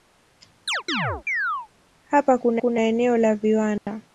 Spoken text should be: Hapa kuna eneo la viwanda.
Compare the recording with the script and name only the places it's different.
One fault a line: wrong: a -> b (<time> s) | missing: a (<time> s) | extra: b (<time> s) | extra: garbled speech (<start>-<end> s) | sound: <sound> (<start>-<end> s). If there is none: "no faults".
sound: chirp (0.7-1.7 s)
extra: kuna (2.6 s)
sound: dropout (3.8-3.9 s)